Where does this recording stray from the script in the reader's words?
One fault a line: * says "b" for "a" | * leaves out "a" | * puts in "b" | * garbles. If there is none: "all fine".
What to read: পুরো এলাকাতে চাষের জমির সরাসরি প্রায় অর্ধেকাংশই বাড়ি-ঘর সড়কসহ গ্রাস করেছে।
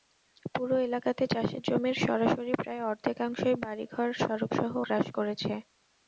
all fine